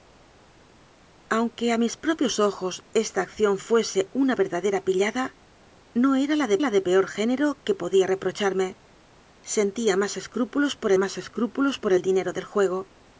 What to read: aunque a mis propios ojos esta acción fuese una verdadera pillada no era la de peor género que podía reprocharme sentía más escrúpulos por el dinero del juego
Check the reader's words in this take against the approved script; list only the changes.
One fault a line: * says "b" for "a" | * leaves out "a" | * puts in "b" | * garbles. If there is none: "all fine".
* puts in "la de"
* puts in "más escrúpulos por"